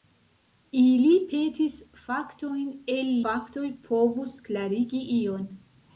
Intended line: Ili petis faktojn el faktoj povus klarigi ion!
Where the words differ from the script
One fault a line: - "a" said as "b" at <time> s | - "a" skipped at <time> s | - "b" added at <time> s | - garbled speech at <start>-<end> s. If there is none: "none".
none